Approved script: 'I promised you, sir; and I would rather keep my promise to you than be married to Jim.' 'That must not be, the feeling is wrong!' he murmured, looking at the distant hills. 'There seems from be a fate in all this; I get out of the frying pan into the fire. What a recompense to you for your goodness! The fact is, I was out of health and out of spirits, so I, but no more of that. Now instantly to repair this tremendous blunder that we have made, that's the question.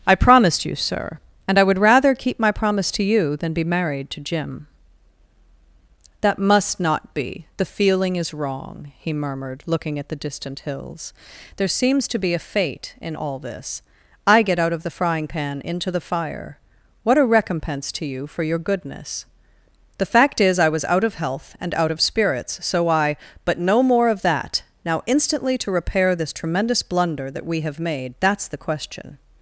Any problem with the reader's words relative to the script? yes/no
yes